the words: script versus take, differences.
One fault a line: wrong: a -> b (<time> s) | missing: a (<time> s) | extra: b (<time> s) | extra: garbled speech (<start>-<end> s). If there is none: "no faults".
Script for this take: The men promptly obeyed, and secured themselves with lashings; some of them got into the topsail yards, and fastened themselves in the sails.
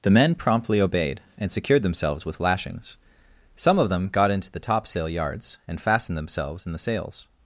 no faults